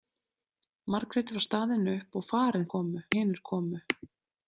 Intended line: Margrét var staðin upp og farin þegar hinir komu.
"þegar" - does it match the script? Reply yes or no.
no